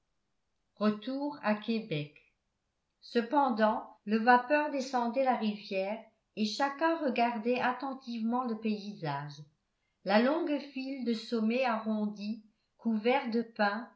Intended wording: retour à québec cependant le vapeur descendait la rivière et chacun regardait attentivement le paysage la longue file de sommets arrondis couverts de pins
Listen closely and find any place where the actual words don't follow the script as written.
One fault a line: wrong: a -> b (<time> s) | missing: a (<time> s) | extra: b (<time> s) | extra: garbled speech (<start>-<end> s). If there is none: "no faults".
no faults